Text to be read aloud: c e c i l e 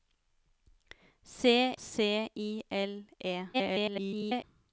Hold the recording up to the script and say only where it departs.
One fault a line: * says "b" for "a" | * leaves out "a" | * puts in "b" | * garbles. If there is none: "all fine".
* leaves out "e"
* garbles